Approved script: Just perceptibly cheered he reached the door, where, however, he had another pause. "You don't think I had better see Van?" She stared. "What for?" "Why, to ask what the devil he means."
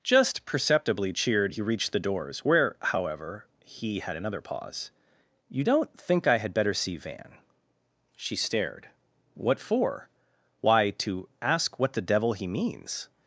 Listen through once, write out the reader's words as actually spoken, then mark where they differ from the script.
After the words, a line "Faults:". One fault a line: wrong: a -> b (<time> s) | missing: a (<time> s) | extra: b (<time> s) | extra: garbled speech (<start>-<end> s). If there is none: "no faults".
Just perceptibly cheered he reached the doors, where, however, he had another pause. "You don't think I had better see Van?" She stared. "What for?" "Why, to ask what the devil he means."
Faults:
wrong: door -> doors (2.0 s)